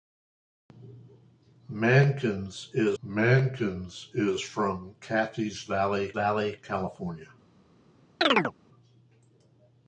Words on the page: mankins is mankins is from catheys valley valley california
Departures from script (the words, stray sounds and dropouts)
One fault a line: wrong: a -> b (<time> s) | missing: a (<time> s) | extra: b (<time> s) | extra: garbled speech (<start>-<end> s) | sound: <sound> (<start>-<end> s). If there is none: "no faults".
sound: chirp (8.2-8.5 s)